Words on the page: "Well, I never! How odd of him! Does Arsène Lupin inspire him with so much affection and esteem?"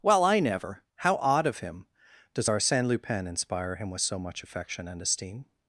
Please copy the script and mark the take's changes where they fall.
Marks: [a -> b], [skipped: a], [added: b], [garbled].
"Well, I never! How odd of him! Does Arsène Lupin inspire him with so much affection and esteem?"